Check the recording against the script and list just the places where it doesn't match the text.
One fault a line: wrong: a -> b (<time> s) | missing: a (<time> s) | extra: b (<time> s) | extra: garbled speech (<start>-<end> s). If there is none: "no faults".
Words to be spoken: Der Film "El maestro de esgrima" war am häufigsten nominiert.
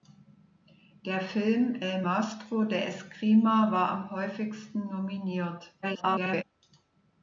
extra: garbled speech (5.8-6.4 s)